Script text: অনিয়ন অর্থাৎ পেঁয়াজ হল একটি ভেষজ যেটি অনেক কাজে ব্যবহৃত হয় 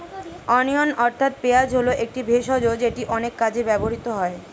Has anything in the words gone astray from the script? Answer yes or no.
no